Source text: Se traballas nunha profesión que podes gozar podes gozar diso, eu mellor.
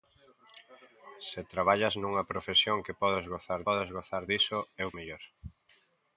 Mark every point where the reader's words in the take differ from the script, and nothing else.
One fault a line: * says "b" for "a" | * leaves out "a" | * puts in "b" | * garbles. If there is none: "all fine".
all fine